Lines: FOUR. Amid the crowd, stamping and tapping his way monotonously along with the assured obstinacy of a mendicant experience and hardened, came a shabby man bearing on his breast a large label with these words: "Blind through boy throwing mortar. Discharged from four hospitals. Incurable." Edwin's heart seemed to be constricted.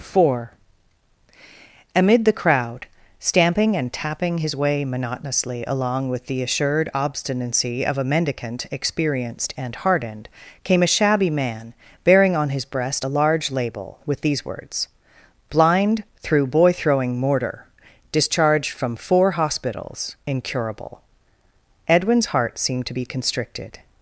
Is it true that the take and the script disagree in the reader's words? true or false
true